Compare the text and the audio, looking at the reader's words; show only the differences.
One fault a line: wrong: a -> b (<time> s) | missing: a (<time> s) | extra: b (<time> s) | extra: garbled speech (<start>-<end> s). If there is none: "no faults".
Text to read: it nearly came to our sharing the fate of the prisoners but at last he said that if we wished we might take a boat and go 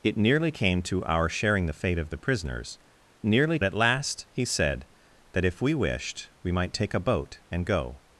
wrong: but -> nearly (3.2 s)